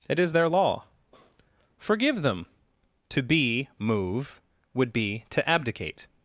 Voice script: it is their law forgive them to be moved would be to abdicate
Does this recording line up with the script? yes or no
no